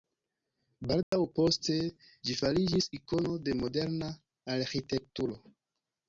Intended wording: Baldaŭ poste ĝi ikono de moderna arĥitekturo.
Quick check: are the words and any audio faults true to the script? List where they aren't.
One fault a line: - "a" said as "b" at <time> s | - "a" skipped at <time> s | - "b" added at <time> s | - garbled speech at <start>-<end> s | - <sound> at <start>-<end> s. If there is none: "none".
- dropout at 1.0-1.1 s
- "fariĝis" added at 2.4 s